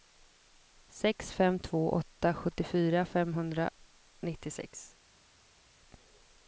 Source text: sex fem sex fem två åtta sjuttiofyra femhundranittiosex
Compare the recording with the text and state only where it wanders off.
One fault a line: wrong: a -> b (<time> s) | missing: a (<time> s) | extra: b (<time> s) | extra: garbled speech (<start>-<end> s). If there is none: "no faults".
missing: sex fem (1.6 s)